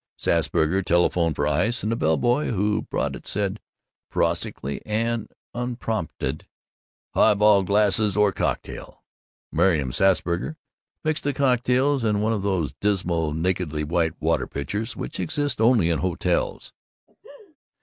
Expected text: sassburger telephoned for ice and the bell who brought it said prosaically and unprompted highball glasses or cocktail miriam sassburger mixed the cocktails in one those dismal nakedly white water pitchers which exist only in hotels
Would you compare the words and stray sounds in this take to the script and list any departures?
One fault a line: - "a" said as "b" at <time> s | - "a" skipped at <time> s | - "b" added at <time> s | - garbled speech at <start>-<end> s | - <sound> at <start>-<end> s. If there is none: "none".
- "boy" added at 2.2 s
- "of" added at 12.3 s
- laugh at 17.1-17.6 s